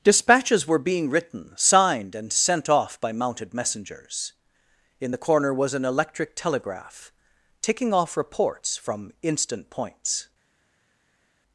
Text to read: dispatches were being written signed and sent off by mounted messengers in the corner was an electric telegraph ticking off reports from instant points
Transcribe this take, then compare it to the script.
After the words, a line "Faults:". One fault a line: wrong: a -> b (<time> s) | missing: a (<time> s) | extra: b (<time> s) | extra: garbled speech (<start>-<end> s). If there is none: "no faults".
dispatches were being written signed and sent off by mounted messengers in the corner was an electric telegraph ticking off reports from instant points
Faults:
no faults